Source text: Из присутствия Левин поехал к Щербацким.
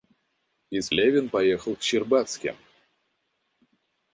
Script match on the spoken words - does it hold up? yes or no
no